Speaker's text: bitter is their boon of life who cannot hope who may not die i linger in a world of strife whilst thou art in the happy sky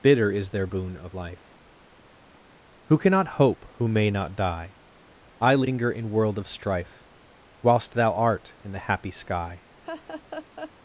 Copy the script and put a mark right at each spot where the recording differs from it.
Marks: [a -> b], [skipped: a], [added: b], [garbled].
bitter is their boon of life who cannot hope who may not die i linger in [skipped: a] world of strife whilst thou art in the happy sky